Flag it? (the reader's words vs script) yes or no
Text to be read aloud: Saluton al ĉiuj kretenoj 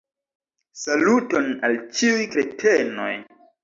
no